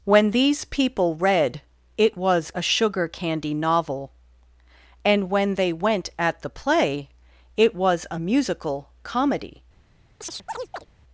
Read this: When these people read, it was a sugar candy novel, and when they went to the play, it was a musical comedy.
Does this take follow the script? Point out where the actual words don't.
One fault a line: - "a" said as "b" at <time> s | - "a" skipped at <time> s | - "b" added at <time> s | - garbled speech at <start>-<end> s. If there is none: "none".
- "to" said as "at" at 6.2 s